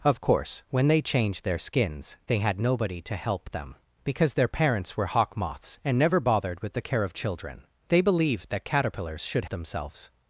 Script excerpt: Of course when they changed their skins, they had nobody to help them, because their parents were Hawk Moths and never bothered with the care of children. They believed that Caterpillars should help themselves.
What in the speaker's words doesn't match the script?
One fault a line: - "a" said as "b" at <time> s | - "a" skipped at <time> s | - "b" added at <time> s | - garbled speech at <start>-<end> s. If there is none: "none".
- "help" skipped at 9.4 s